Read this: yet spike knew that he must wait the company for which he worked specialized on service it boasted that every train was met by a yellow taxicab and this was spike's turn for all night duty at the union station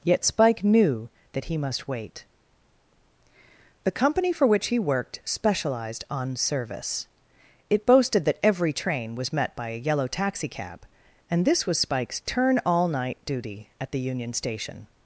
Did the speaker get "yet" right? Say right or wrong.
right